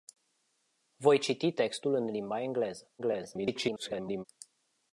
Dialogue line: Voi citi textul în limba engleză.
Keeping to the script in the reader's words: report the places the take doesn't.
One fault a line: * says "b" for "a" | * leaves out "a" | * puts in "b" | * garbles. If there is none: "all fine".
* garbles